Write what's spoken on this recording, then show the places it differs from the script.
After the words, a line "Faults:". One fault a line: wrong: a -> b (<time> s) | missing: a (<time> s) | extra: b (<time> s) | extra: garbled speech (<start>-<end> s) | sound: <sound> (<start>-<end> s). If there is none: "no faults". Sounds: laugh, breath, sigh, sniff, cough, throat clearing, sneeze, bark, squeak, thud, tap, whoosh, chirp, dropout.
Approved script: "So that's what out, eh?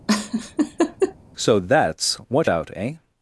"So that's what out, eh?
Faults:
sound: laugh (0.1-1.2 s)